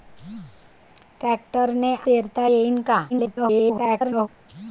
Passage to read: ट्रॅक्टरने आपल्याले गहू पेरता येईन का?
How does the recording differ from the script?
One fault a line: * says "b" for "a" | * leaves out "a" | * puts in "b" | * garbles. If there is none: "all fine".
* leaves out "आपल्याले गहू"
* garbles